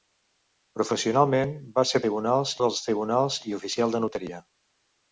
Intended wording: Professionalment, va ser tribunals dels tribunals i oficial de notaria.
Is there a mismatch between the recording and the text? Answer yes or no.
no